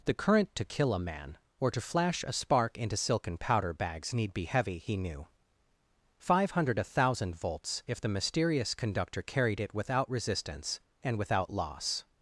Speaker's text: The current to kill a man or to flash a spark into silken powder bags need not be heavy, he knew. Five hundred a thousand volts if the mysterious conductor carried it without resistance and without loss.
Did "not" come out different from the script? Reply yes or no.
yes